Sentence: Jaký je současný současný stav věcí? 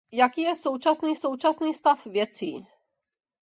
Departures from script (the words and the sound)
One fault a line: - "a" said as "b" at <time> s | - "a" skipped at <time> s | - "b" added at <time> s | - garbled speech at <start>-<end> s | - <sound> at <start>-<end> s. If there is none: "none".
none